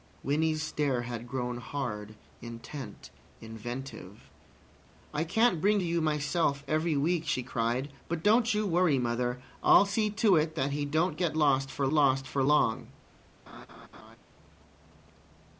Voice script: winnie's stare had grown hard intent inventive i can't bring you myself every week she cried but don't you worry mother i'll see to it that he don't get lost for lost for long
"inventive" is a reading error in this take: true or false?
false